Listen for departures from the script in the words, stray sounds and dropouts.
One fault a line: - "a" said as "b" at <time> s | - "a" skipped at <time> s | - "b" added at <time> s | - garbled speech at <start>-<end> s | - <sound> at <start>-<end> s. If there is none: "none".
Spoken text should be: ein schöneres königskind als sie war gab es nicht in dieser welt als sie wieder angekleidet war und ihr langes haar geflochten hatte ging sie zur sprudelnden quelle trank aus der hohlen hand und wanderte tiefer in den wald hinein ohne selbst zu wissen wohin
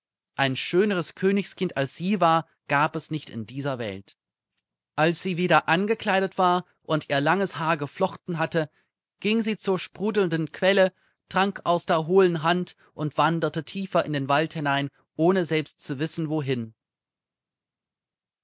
none